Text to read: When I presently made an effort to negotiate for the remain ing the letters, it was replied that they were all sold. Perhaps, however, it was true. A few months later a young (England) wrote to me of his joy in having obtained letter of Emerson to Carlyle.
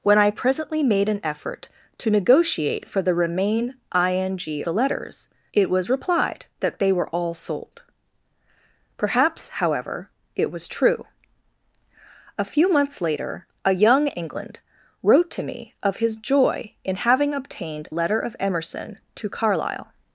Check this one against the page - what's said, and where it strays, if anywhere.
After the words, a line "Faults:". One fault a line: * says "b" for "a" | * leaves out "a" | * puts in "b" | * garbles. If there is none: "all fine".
When I presently made an effort to negotiate for the remain ing the letters, it was replied that they were all sold. Perhaps, however, it was true. A few months later a young (England) wrote to me of his joy in having obtained letter of Emerson to Carlyle.
Faults:
all fine